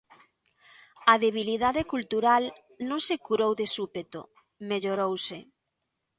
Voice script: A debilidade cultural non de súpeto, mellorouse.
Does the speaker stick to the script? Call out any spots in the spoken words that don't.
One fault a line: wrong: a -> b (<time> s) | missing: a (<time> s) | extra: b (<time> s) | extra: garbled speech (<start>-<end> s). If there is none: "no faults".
extra: se curou (3.1 s)